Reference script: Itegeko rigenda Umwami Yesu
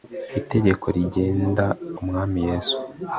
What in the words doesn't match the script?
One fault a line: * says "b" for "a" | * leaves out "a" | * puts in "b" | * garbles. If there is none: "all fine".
all fine